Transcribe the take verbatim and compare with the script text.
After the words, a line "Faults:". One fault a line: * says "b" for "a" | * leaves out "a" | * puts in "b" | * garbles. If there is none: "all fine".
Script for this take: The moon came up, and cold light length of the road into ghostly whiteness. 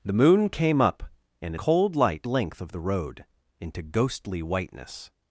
The moon came up, and cold light length of the road into ghostly whiteness.
Faults:
all fine